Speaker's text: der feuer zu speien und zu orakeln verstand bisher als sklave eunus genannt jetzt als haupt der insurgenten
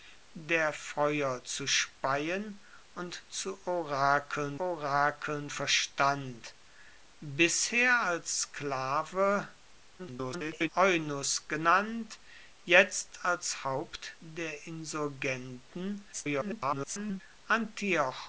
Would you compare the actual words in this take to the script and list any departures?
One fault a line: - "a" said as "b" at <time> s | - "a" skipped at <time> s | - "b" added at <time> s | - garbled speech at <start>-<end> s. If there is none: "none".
- "orakeln" added at 4.6 s
- garbled speech at 10.0-10.7 s
- garbled speech at 16.1-17.2 s